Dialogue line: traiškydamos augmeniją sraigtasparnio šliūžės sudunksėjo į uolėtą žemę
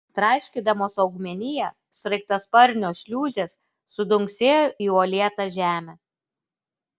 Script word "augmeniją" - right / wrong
right